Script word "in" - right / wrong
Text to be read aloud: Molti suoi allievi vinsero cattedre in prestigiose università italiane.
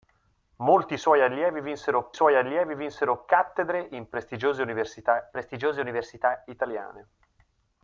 right